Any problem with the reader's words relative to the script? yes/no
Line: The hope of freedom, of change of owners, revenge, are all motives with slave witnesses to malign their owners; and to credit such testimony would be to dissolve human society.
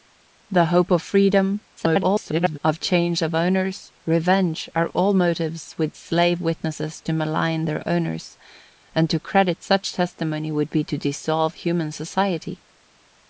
yes